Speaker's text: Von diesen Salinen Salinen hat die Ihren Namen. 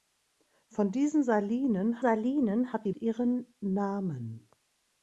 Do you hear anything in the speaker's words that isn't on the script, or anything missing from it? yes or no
no